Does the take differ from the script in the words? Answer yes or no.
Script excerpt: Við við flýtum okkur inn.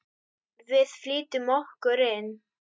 yes